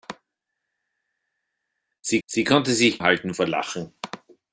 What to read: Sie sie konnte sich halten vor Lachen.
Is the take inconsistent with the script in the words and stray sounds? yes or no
no